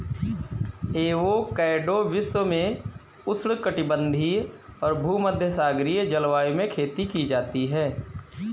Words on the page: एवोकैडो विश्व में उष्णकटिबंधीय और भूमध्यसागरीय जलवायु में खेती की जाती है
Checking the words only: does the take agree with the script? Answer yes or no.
yes